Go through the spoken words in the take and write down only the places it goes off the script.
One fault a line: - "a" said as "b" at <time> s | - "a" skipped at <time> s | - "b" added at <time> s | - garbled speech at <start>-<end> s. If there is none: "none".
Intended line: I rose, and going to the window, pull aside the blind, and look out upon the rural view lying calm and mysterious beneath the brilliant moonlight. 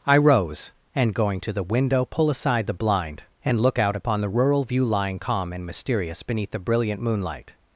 none